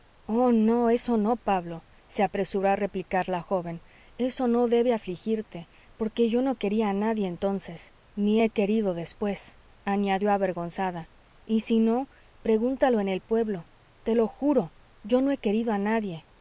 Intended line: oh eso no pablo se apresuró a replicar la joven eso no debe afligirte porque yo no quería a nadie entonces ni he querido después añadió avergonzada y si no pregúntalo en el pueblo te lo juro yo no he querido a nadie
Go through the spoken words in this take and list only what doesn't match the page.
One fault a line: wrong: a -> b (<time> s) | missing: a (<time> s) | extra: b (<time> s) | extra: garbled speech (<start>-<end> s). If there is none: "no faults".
extra: no (0.5 s)